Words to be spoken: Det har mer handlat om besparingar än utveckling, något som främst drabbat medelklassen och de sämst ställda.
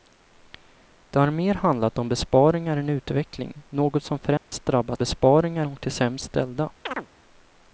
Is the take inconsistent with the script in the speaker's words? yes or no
yes